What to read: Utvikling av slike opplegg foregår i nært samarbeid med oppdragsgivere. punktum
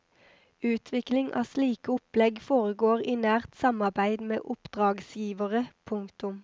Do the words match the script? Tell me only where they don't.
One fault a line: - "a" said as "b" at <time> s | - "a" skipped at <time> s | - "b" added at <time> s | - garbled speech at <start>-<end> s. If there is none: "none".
none